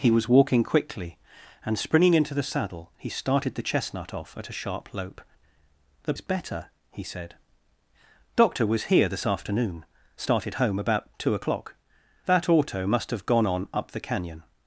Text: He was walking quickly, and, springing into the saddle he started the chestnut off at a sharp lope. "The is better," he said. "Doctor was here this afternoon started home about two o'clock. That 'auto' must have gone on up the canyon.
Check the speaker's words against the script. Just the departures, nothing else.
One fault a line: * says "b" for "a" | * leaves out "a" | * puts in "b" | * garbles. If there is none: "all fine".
all fine